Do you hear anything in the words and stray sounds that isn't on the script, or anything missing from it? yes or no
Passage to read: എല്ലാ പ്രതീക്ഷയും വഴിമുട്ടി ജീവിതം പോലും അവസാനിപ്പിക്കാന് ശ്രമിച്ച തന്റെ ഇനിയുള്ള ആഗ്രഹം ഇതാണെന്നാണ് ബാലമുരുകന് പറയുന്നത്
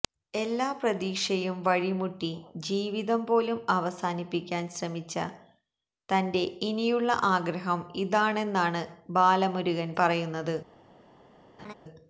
yes